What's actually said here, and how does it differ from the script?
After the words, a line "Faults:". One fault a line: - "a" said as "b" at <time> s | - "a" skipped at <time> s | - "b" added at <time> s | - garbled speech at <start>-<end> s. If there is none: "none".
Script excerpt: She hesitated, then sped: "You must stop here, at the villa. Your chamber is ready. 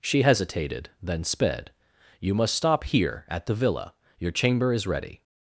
She hesitated, then sped: "You must stop here, at the villa. Your chamber is ready.
Faults:
none